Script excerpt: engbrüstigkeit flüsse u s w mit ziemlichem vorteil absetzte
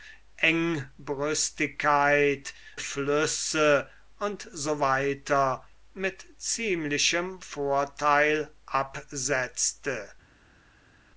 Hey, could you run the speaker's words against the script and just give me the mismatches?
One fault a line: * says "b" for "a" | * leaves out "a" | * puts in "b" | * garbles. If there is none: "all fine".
all fine